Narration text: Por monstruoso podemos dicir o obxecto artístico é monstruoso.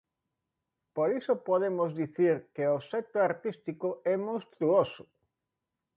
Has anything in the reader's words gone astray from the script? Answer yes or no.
yes